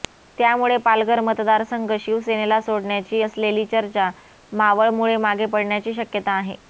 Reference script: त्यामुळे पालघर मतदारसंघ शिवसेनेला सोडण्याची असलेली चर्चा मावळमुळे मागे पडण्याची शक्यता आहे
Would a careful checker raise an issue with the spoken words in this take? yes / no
no